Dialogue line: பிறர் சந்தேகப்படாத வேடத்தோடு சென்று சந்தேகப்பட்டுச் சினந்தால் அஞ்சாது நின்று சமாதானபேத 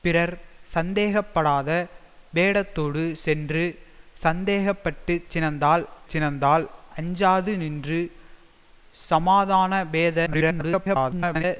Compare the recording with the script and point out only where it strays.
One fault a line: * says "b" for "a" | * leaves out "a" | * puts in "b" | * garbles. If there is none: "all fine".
* puts in "சினந்தால்"
* garbles